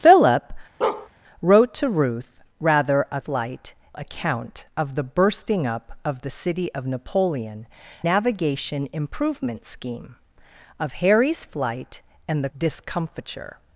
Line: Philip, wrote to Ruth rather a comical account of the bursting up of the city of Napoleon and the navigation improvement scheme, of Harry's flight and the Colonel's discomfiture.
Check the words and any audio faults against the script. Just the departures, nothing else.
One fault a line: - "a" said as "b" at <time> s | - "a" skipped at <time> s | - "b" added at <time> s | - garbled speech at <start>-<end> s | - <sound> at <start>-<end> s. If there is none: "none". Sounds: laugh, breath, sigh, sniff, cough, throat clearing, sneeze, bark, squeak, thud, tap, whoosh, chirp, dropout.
- bark at 0.8-1.1 s
- "comical" said as "flight" at 3.2 s
- "and the" skipped at 7.7 s
- "Colonel's" skipped at 12.5 s